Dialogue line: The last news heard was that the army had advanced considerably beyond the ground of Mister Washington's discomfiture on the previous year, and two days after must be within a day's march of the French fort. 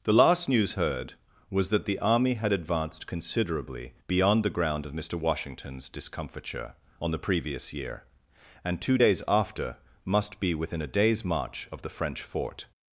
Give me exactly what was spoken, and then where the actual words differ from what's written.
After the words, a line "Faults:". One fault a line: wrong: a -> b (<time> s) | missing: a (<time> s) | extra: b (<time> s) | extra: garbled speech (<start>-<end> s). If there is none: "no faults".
The last news heard was that the army had advanced considerably beyond the ground of Mister Washington's discomfiture on the previous year, and two days after must be within a day's march of the French fort.
Faults:
no faults